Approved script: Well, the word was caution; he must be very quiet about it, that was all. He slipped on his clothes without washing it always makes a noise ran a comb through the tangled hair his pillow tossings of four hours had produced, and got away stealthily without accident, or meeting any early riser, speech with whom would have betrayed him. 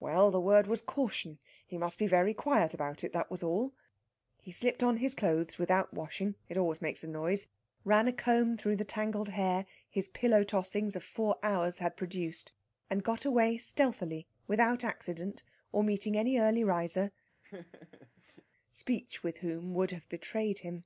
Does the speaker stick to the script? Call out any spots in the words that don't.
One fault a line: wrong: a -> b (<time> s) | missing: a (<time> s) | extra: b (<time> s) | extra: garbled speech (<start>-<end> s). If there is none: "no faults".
no faults